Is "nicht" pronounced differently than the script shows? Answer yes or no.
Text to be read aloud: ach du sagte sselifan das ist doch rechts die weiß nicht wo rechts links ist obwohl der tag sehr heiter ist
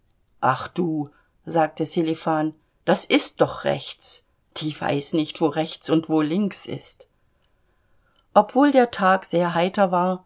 no